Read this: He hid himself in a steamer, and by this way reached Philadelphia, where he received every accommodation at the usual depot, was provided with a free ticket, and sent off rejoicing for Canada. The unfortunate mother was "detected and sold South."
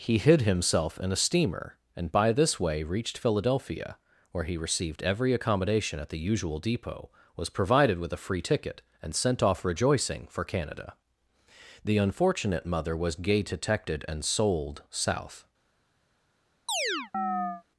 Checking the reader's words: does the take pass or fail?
fail